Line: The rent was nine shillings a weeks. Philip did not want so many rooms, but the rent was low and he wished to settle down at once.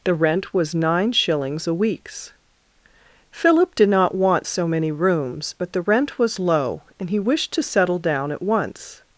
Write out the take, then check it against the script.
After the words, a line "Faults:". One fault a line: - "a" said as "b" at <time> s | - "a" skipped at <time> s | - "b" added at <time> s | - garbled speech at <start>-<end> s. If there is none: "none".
The rent was nine shillings a weeks. Philip did not want so many rooms, but the rent was low and he wished to settle down at once.
Faults:
none